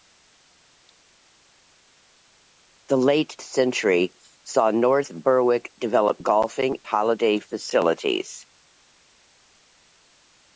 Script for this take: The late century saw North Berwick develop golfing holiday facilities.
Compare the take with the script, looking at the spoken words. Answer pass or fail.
pass